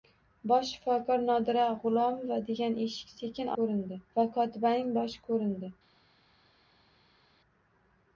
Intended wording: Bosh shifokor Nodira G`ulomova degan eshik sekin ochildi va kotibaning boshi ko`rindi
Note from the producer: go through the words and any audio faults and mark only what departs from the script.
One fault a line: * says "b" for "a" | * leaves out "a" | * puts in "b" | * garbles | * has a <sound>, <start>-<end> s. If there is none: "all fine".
* says "ko`rindi" for "ochildi"